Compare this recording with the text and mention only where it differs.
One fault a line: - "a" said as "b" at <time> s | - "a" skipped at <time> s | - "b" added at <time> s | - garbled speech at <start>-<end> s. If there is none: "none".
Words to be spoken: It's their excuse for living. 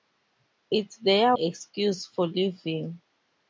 none